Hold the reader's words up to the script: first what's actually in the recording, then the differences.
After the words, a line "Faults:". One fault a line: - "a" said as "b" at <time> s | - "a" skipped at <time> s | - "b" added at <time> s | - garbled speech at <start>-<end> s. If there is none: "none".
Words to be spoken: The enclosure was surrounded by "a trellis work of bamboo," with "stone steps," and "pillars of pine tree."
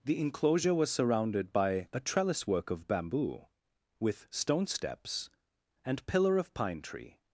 The enclosure was surrounded by "a trellis work of bamboo," with "stone steps," and "pillar of pine tree."
Faults:
- "pillars" said as "pillar" at 6.0 s